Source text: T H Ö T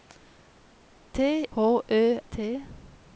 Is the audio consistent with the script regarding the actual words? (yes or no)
yes